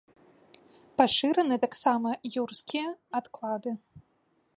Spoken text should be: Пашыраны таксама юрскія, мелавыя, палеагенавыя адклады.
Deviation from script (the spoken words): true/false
true